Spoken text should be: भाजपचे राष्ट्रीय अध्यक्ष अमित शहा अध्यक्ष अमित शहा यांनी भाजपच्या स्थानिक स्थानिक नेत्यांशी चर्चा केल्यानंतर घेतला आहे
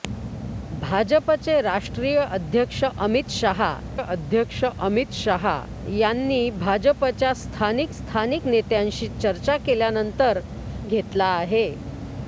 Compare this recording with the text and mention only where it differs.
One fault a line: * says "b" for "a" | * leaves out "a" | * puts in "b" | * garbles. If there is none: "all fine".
all fine